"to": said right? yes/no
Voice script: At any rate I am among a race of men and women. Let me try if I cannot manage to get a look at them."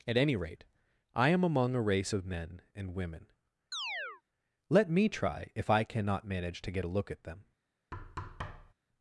yes